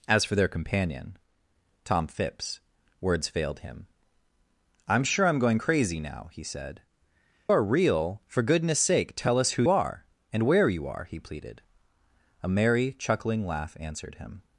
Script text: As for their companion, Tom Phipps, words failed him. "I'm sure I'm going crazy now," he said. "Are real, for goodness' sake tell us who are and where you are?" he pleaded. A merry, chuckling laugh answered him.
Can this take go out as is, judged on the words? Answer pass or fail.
pass